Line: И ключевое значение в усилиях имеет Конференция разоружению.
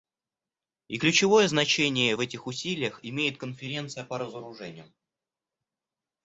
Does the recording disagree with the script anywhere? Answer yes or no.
yes